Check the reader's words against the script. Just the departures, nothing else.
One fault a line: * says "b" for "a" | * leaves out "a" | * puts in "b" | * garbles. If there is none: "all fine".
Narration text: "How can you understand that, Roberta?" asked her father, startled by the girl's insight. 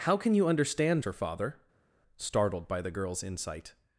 * leaves out "that Roberta asked"